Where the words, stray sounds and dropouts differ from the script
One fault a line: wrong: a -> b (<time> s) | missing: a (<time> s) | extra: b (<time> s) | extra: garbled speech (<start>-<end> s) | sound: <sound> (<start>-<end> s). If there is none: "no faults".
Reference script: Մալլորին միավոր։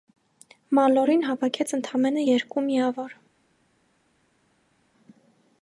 extra: հավաքեց ընդամենը երկու (1.3 s)